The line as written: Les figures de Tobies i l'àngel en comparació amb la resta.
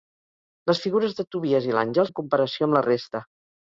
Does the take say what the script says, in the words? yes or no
yes